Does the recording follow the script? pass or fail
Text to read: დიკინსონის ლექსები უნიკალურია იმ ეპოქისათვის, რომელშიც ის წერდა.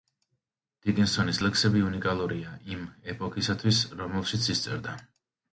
pass